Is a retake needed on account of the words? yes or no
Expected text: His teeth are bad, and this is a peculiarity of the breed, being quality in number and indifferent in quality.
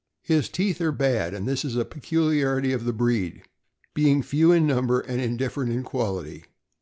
yes